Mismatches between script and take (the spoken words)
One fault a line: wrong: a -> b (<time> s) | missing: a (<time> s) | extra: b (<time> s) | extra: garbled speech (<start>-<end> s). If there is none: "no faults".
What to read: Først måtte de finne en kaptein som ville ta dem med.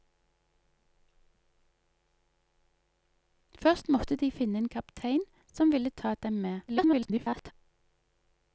extra: garbled speech (6.7-7.5 s)